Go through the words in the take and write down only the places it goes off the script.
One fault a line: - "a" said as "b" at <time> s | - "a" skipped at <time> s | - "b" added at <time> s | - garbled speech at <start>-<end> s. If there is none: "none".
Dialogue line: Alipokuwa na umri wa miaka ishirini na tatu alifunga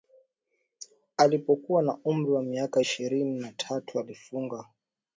none